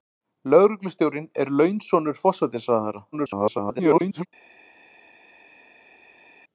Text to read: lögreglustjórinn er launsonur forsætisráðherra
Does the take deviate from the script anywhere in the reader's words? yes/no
yes